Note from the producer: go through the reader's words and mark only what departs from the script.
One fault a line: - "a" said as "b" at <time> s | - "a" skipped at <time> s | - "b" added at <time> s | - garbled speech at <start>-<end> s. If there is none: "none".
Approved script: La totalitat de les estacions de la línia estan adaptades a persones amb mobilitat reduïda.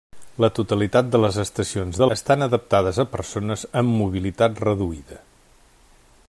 - "la línia" skipped at 2.1 s